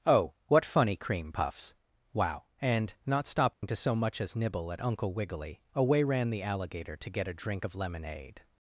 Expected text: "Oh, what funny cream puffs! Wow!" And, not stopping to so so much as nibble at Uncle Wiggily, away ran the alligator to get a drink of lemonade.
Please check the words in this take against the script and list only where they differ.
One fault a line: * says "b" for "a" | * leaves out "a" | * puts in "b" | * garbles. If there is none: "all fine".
* leaves out "so"